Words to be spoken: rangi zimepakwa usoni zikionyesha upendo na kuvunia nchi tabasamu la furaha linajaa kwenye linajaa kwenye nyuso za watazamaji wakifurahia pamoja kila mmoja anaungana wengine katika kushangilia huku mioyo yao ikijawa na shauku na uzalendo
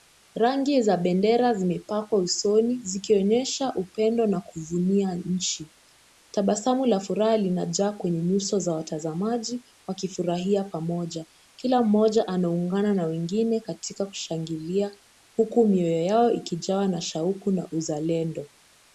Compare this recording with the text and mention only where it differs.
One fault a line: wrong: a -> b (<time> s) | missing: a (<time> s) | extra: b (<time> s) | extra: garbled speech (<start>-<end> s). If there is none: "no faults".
extra: za bendera (0.8 s)
missing: linajaa kwenye (8.2 s)
extra: na (12.9 s)